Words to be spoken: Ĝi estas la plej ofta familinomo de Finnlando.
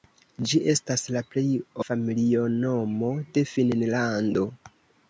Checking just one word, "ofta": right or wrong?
wrong